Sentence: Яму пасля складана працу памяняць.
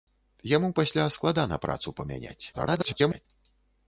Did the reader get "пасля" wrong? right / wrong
right